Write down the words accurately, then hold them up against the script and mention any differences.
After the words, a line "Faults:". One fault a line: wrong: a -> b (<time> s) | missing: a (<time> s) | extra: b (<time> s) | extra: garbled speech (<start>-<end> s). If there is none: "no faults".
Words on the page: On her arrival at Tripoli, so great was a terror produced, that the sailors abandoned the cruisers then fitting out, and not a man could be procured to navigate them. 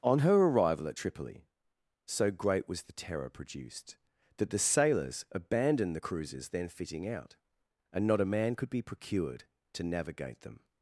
On her arrival at Tripoli, so great was the terror produced, that the sailors abandoned the cruisers then fitting out, and not a man could be procured to navigate them.
Faults:
wrong: a -> the (2.8 s)